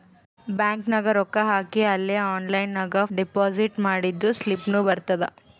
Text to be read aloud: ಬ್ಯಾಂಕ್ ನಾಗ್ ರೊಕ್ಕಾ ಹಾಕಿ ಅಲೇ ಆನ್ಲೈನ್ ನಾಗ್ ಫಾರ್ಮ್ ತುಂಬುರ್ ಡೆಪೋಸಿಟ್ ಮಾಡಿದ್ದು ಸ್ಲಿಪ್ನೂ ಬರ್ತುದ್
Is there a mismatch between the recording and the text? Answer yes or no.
yes